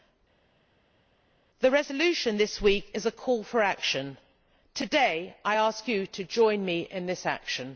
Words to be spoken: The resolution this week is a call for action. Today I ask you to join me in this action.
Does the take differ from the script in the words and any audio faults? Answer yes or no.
no